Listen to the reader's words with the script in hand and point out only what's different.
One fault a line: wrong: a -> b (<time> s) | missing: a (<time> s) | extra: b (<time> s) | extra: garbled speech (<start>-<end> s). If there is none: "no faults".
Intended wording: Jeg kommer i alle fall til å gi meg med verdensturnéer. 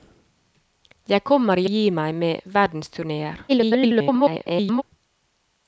missing: alle fall til (1.7 s)
extra: garbled speech (3.5-4.8 s)